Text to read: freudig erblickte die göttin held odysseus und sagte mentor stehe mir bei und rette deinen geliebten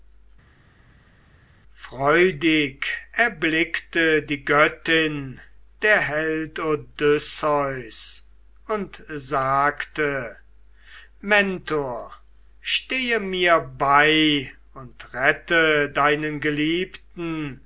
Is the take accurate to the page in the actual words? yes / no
no